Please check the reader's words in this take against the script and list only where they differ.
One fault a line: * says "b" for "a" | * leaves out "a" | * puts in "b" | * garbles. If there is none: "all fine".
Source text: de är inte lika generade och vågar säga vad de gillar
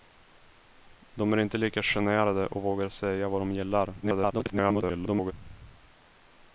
* garbles